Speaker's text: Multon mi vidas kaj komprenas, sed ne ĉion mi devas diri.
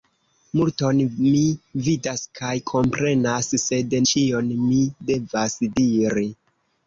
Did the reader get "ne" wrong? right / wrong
wrong